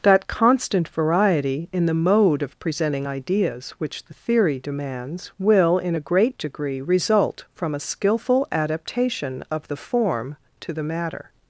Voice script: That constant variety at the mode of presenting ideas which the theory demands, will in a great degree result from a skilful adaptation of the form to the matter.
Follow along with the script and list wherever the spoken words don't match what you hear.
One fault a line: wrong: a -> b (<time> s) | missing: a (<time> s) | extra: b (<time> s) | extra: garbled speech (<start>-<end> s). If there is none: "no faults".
wrong: at -> in (1.7 s)